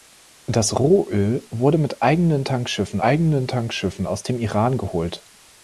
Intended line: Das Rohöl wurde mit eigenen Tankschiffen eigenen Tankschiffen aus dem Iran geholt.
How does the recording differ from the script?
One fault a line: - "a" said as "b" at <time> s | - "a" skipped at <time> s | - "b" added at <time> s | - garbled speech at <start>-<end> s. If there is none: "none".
none